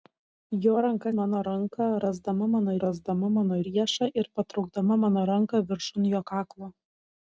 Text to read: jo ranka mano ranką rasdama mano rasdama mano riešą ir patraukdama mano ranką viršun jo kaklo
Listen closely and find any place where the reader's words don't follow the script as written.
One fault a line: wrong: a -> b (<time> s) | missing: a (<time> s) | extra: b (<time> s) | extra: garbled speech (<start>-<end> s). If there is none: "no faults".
no faults